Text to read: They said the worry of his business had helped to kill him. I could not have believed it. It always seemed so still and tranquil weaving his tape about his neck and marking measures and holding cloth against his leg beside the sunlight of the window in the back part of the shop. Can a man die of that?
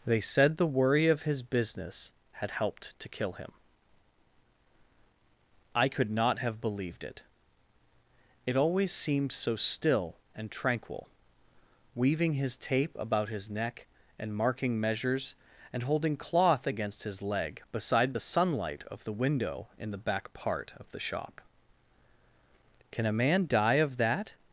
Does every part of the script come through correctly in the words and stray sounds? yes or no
yes